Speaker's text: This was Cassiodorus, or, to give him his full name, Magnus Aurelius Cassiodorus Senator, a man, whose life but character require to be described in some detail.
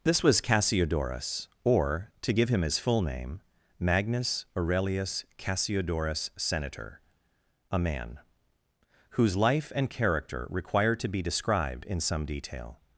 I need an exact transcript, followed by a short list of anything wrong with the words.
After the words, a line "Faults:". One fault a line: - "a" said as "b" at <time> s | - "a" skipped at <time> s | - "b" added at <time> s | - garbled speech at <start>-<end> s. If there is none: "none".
This was Cassiodorus, or, to give him his full name, Magnus Aurelius Cassiodorus Senator, a man, whose life and character require to be described in some detail.
Faults:
- "but" said as "and" at 9.7 s